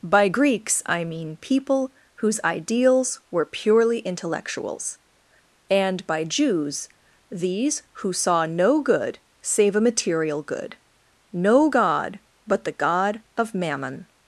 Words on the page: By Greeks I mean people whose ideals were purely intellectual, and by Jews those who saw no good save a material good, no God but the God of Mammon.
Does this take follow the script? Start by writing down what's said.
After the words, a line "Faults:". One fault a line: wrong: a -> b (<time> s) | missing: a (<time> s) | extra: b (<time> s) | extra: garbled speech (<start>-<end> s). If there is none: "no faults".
By Greeks I mean people whose ideals were purely intellectuals, and by Jews these who saw no good save a material good, no God but the God of Mammon.
Faults:
wrong: intellectual -> intellectuals (4.0 s)
wrong: those -> these (7.3 s)